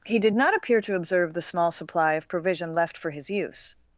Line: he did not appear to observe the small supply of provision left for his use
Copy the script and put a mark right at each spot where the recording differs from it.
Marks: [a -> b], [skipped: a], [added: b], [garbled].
he did not appear to observe the small supply of provision left for his use